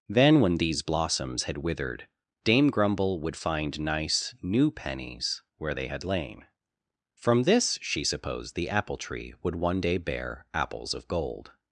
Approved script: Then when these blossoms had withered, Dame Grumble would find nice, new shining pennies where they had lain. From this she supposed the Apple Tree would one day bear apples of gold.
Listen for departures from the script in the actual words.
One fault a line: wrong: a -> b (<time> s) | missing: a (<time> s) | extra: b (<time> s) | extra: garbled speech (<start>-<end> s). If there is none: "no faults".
missing: shining (4.7 s)